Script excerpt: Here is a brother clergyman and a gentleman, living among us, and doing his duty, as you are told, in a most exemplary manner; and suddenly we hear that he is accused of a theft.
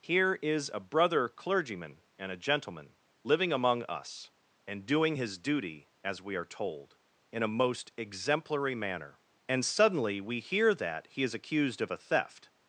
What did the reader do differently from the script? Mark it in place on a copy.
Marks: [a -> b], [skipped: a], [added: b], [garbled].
Here is a brother clergyman and a gentleman, living among us, and doing his duty, as [you -> we] are told, in a most exemplary manner; and suddenly we hear that he is accused of a theft.